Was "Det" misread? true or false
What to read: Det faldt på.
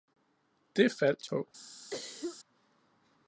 false